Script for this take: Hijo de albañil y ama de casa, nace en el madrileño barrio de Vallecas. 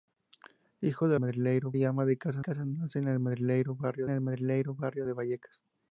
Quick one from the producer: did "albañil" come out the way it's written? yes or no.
no